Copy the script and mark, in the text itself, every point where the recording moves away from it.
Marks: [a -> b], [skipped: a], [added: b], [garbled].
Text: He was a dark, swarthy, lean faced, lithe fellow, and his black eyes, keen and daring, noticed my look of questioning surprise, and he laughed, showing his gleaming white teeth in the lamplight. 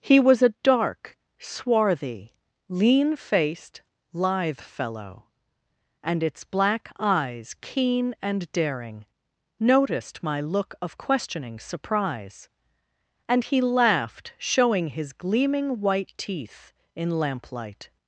He was a dark, swarthy, lean faced, lithe fellow, and [his -> its] black eyes, keen and daring, noticed my look of questioning surprise, and he laughed, showing his gleaming white teeth in [skipped: the] lamplight.